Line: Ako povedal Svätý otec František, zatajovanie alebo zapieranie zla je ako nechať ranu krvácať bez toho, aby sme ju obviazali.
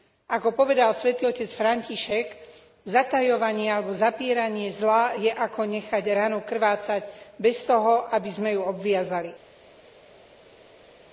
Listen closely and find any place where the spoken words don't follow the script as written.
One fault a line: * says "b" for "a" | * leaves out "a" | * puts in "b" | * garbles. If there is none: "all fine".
all fine